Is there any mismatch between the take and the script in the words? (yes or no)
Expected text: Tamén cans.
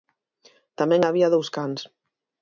yes